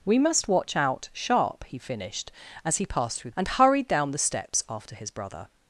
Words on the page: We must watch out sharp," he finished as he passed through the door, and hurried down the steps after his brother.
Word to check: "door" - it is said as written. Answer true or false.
false